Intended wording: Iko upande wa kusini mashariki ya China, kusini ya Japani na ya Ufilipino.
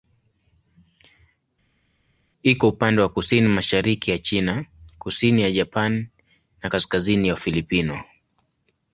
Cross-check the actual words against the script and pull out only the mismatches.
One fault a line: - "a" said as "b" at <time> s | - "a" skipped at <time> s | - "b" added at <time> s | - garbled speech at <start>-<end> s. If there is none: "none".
- "kaskazini" added at 6.6 s